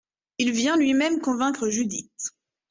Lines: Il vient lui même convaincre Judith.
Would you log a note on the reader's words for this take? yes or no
no